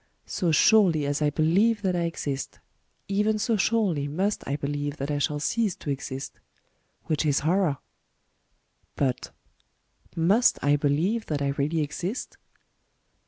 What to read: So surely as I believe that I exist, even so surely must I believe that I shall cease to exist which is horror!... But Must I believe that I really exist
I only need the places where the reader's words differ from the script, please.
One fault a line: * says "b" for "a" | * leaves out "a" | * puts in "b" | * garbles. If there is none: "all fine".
all fine